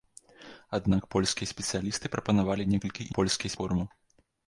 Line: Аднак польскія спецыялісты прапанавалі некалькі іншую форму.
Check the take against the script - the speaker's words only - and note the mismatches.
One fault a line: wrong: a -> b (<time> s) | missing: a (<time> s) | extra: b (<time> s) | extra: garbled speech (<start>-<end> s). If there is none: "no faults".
wrong: іншую -> польскія (3.2 s)